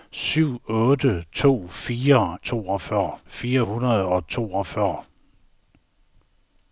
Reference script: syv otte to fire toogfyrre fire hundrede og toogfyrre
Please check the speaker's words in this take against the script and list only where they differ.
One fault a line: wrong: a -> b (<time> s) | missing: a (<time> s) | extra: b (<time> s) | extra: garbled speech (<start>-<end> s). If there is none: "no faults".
no faults